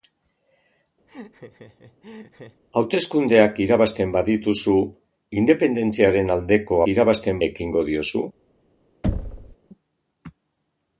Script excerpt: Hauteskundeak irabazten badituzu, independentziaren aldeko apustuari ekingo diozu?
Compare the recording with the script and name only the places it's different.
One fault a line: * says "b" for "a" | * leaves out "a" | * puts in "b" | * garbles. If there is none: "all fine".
* says "irabazten" for "apustuari"